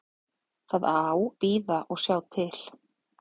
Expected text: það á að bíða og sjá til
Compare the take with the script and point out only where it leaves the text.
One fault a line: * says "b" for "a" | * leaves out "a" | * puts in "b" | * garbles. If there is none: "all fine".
* leaves out "að"